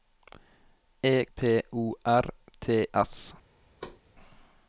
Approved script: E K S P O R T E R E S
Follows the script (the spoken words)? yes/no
no